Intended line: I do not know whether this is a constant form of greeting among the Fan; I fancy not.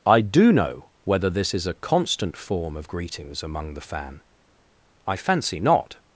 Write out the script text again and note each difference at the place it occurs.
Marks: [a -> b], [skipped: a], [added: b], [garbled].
I do [skipped: not] know whether this is a constant form of [greeting -> greetings] among the Fan; I fancy not.